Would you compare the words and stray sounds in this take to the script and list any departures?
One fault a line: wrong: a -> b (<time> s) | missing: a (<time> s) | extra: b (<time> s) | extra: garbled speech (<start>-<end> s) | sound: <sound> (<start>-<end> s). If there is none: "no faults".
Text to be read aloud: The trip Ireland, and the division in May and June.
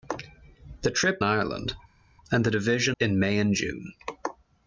no faults